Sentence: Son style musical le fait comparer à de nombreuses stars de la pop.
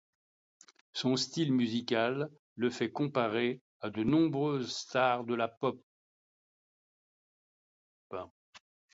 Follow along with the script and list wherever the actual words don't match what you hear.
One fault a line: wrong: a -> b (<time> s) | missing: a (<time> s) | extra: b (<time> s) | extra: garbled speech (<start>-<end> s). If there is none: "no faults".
no faults